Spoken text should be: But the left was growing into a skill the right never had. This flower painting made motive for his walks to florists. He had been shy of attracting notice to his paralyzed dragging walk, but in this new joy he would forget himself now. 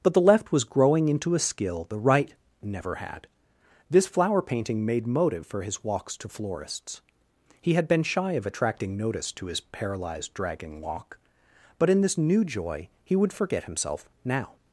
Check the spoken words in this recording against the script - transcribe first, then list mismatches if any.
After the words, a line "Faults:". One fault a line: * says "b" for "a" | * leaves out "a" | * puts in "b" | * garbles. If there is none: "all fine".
But the left was growing into a skill the right never had. This flower painting made motive for his walks to florists. He had been shy of attracting notice to his paralyzed dragging walk, but in this new joy he would forget himself now.
Faults:
all fine